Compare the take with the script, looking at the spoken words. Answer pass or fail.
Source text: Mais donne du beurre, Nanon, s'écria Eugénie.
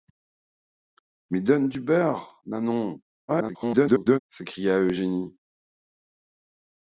fail